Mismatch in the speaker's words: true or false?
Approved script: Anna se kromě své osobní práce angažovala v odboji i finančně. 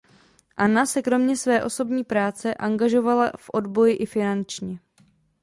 false